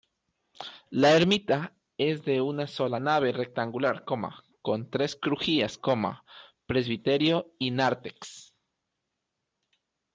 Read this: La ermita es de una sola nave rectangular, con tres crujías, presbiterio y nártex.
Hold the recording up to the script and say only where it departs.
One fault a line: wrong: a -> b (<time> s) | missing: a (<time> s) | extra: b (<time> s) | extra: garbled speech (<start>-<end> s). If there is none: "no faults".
no faults